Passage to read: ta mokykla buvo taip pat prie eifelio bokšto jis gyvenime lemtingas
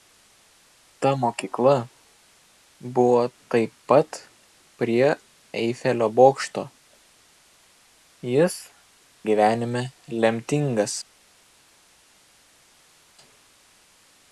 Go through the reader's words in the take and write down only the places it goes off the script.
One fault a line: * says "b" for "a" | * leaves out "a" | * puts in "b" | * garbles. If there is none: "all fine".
all fine